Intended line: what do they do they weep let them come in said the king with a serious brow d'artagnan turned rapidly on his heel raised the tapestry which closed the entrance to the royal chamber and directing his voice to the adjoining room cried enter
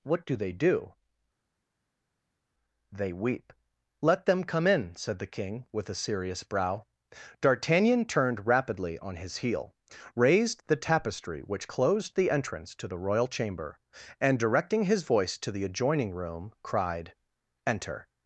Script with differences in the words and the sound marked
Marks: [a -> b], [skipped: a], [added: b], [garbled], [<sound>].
what do they do they weep let them come in said the king with a serious brow d'artagnan turned rapidly on his heel raised the tapestry which closed the entrance to the royal chamber and directing his voice to the adjoining room cried enter